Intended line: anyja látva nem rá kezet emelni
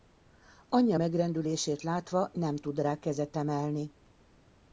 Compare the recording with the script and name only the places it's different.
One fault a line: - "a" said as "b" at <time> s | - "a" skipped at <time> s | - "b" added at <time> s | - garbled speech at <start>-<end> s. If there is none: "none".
- "megrendülését" added at 0.9 s
- "tud" added at 2.6 s